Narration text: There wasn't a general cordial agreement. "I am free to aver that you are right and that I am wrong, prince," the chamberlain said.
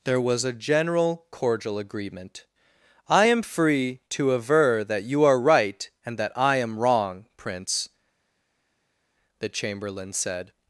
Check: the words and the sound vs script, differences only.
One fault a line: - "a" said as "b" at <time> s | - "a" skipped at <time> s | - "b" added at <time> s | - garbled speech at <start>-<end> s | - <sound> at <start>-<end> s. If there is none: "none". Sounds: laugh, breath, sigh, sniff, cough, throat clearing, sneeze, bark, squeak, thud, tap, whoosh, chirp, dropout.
- "wasn't" said as "was" at 0.2 s